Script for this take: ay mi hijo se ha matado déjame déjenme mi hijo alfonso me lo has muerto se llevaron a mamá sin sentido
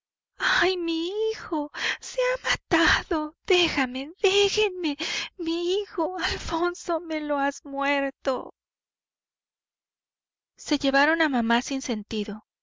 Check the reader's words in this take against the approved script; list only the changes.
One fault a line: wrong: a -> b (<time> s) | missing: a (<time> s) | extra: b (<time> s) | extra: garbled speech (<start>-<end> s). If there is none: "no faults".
no faults